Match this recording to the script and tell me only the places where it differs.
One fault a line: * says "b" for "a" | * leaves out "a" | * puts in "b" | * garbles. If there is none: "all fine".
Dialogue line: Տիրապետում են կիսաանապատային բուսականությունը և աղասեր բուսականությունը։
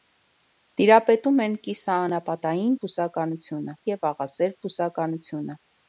all fine